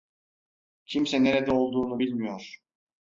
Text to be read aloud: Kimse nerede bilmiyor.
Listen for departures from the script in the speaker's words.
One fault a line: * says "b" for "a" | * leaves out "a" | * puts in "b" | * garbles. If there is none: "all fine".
* puts in "olduğunu"